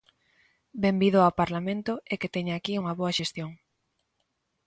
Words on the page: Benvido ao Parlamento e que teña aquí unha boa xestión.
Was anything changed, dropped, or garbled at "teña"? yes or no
no